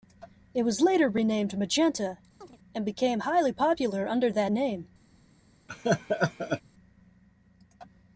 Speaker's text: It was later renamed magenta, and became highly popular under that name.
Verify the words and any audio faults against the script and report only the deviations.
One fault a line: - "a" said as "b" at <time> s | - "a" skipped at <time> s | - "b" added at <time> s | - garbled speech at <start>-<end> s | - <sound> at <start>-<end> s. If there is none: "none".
- chirp at 2.4-2.6 s
- laugh at 5.7-6.6 s